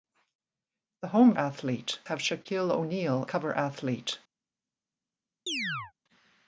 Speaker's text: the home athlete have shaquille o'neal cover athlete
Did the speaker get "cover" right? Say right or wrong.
right